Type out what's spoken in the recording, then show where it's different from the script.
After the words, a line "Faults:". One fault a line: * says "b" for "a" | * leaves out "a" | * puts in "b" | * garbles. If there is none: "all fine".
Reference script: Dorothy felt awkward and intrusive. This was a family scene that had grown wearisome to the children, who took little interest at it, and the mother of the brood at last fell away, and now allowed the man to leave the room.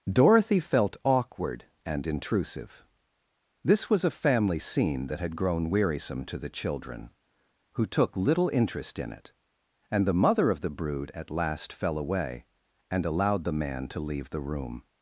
Dorothy felt awkward and intrusive. This was a family scene that had grown wearisome to the children, who took little interest in it, and the mother of the brood at last fell away, and allowed the man to leave the room.
Faults:
* says "in" for "at"
* leaves out "now"